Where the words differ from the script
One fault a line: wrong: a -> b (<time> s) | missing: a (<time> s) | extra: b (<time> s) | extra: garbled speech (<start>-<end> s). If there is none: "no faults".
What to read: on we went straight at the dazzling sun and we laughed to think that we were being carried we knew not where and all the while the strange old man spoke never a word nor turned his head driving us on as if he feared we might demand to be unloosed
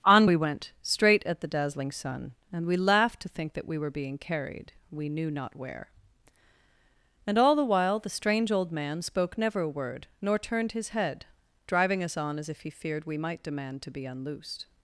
no faults